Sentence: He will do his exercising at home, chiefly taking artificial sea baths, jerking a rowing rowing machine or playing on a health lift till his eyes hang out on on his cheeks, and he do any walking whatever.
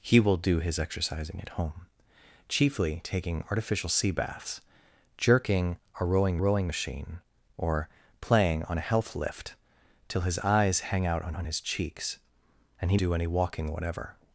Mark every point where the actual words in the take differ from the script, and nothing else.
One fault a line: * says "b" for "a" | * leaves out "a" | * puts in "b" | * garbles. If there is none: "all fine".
all fine